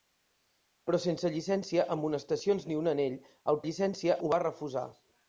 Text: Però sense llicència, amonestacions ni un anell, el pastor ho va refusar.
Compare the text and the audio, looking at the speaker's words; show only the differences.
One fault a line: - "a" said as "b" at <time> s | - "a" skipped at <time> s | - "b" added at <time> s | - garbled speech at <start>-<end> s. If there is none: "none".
- "pastor" said as "llicència" at 3.7 s